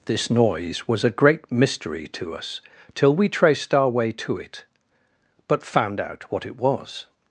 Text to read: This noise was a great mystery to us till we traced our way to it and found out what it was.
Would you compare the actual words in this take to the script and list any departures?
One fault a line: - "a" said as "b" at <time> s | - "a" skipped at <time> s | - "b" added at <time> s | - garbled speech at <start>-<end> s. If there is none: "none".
- "and" said as "but" at 5.5 s